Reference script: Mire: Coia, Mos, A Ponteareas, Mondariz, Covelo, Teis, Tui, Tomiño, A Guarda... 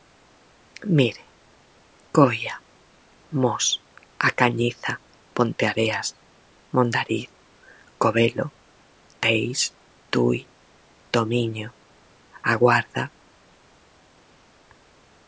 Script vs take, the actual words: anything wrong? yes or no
yes